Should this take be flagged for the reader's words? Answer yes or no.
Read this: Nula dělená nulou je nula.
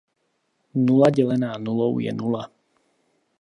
no